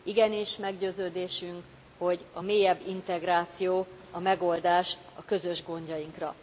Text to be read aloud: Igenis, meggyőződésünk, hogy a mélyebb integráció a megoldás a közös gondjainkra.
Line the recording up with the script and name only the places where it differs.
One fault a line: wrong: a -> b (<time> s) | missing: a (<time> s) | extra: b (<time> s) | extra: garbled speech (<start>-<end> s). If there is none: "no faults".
no faults